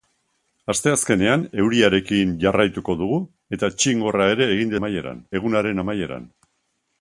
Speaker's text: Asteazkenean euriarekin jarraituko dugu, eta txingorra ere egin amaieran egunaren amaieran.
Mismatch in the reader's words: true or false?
false